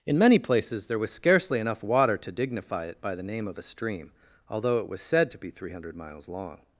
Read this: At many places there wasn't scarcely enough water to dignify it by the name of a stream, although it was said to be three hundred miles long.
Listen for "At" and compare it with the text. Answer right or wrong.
wrong